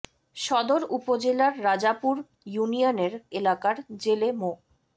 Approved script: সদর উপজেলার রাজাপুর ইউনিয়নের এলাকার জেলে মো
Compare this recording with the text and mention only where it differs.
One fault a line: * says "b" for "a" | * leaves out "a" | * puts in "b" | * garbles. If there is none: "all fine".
all fine